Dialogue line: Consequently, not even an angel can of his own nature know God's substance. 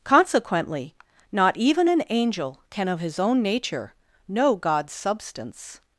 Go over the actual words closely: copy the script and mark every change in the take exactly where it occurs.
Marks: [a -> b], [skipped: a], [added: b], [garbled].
Consequently, not even an angel can of his own nature know God's substance.